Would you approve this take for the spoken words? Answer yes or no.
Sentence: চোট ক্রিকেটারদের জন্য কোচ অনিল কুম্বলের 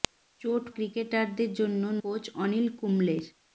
yes